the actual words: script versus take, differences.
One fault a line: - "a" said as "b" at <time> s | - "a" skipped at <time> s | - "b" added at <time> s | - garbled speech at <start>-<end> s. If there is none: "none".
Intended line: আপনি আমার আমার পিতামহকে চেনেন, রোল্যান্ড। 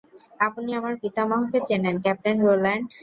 - "আমার" skipped at 0.9 s
- "ক্যাপ্টেন" added at 2.0 s